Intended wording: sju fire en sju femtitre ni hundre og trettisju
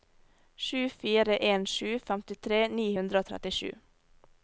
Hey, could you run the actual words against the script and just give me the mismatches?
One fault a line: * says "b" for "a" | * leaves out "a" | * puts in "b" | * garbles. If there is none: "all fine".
all fine